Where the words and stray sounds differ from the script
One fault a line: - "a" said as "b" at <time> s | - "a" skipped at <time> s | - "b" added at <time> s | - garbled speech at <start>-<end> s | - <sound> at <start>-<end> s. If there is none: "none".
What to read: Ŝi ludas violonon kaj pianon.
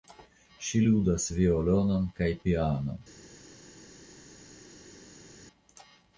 none